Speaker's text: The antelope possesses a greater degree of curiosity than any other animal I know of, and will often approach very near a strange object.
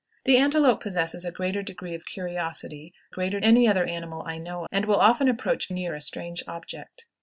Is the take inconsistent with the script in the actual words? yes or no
yes